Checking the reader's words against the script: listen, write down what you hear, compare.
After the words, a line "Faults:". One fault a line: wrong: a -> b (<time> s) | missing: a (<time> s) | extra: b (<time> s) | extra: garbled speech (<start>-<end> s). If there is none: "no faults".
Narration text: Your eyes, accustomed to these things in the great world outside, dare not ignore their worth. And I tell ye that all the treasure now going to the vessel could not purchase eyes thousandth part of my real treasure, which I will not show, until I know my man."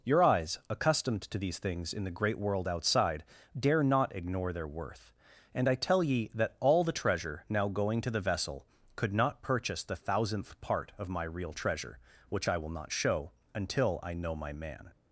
Your eyes, accustomed to these things in the great world outside, dare not ignore their worth. And I tell ye that all the treasure now going to the vessel could not purchase the thousandth part of my real treasure, which I will not show, until I know my man."
Faults:
wrong: eyes -> the (9.8 s)